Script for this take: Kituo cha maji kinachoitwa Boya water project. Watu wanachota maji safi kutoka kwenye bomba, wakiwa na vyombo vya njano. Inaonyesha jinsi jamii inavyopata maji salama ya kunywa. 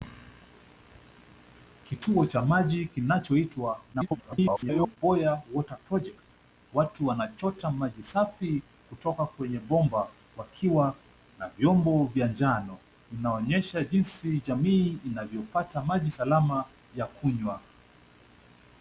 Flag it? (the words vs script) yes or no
yes